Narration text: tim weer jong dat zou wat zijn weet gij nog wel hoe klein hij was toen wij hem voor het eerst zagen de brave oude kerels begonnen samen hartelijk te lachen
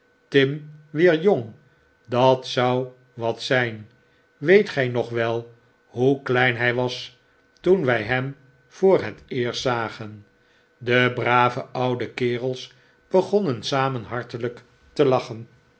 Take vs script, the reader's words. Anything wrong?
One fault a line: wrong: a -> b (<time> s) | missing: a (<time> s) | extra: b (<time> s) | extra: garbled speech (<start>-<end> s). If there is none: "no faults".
no faults